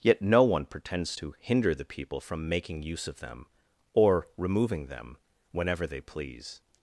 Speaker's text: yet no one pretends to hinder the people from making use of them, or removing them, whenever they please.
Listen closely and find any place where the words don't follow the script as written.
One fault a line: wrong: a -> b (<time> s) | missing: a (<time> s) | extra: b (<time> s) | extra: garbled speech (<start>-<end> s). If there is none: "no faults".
no faults